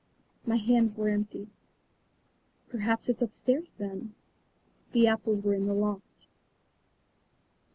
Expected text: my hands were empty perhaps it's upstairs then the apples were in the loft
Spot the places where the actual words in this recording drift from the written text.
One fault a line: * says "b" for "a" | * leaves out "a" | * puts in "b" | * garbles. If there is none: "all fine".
all fine